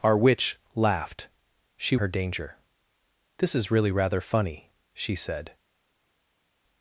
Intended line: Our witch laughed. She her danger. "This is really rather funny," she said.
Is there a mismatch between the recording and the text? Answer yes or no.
no